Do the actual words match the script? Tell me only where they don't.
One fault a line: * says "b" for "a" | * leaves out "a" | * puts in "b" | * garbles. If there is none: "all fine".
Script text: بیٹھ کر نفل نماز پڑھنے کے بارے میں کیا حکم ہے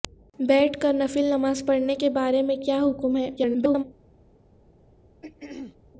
* garbles